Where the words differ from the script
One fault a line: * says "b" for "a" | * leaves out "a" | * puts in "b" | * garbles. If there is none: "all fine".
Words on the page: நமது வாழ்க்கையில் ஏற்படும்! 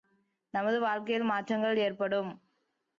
* puts in "மாற்றங்கள்"